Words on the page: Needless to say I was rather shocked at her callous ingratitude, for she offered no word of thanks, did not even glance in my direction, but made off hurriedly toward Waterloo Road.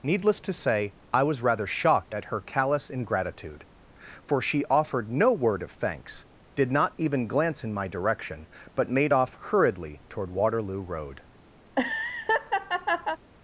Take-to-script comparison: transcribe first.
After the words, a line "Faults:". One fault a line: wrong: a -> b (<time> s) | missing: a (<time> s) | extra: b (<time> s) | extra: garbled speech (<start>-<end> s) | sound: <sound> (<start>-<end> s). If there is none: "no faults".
Needless to say I was rather shocked at her callous ingratitude, for she offered no word of thanks, did not even glance in my direction, but made off hurriedly toward Waterloo Road.
Faults:
sound: laugh (11.7-13.2 s)